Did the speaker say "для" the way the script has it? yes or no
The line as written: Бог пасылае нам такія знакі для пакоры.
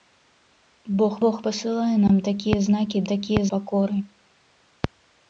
no